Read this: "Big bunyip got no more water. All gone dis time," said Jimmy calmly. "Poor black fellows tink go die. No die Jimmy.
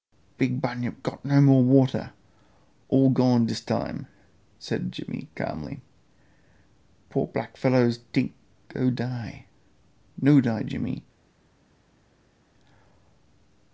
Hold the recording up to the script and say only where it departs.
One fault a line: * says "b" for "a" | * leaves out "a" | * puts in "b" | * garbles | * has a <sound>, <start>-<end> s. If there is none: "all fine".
all fine